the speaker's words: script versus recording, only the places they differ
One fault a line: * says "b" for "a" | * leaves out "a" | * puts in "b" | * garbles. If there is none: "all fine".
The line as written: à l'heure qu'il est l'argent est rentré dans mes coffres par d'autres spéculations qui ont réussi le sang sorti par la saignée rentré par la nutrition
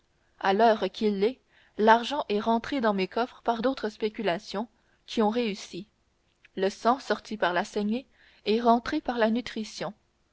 * puts in "est"